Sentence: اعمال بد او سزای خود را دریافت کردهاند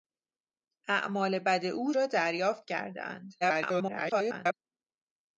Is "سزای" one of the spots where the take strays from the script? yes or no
yes